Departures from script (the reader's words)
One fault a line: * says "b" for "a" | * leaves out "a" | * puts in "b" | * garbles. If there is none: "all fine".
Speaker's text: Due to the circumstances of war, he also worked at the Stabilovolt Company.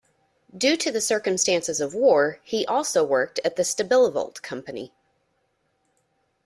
all fine